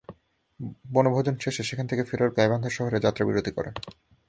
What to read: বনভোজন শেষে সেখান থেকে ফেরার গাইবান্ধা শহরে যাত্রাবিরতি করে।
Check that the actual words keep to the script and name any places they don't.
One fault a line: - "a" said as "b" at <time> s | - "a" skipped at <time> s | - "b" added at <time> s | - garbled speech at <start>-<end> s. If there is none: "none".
none